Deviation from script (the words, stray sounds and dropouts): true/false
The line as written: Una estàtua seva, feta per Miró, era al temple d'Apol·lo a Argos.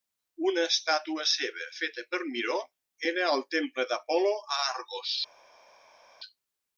false